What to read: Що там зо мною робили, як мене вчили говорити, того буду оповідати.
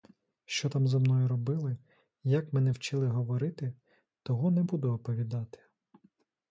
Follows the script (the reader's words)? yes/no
no